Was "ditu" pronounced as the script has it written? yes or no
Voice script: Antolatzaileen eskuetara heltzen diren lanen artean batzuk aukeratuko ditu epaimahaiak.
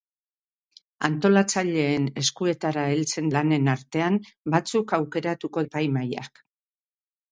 no